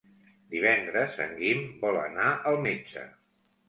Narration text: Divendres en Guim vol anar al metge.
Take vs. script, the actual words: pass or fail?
pass